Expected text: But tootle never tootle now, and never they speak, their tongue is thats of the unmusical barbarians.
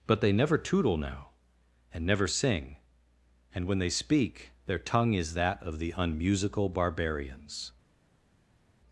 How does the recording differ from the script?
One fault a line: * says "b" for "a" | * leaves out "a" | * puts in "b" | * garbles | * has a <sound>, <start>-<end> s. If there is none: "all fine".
* says "they" for "tootle"
* puts in "sing and when"
* says "that" for "thats"